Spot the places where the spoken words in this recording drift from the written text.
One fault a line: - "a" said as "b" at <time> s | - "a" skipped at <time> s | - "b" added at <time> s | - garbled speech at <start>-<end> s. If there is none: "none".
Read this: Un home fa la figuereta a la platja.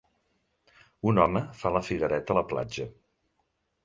none